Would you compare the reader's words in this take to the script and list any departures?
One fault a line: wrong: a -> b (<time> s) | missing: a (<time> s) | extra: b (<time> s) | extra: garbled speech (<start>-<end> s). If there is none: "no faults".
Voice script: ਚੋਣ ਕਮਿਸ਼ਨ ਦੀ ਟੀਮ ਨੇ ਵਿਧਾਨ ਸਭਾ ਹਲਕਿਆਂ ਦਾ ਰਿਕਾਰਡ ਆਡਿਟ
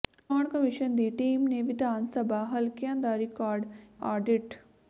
no faults